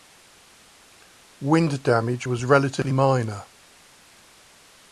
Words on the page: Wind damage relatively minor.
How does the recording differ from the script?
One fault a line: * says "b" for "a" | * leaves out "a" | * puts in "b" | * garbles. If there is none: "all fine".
* puts in "was"